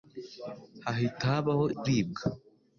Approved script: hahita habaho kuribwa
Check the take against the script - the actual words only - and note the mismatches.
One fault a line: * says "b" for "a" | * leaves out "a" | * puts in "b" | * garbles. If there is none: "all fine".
all fine